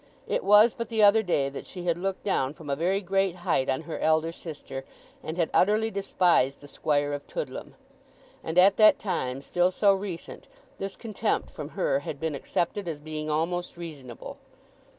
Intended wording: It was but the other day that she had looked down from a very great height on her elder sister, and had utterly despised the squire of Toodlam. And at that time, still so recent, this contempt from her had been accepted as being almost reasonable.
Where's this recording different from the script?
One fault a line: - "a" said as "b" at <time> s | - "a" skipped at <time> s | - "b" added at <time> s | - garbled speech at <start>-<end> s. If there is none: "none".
none